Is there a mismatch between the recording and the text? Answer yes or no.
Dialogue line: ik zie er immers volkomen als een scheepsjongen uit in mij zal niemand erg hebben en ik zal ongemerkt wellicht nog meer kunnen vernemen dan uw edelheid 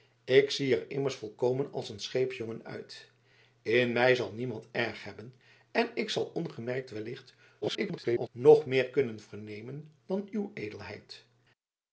yes